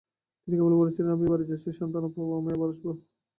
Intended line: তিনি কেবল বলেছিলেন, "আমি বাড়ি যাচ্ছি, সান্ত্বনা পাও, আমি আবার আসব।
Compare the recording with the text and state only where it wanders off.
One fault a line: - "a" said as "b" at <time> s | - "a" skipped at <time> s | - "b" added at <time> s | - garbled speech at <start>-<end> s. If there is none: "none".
none